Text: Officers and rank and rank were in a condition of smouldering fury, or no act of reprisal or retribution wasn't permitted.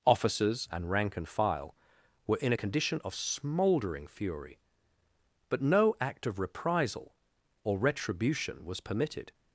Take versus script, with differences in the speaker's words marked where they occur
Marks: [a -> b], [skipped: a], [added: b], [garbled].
Officers and rank and [rank -> file] were in a condition of smouldering fury, [or -> but] no act of reprisal or retribution [wasn't -> was] permitted.